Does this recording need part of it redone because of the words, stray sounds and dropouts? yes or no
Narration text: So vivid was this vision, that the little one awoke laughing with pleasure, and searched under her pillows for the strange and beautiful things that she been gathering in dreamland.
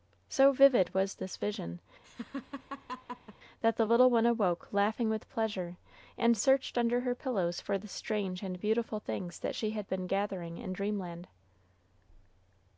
yes